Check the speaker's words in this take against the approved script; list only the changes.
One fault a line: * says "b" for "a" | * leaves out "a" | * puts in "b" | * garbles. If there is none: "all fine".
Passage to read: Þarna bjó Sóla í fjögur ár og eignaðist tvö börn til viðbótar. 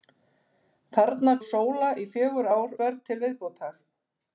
* leaves out "bjó"
* leaves out "og eignaðist tvö"